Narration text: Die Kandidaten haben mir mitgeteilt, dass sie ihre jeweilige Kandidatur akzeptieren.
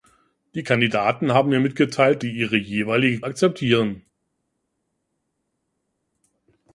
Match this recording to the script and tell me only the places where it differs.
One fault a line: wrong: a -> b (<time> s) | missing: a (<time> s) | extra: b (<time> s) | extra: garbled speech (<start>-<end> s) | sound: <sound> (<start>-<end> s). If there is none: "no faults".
missing: dass (2.2 s)
missing: Kandidatur (3.2 s)